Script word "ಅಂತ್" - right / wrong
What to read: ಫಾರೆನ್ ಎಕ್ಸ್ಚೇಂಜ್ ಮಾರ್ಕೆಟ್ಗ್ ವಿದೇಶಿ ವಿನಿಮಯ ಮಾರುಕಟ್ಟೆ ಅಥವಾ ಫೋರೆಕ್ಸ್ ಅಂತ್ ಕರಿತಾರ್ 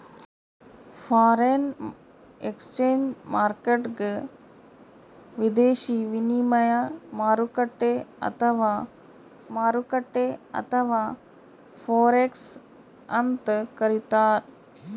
right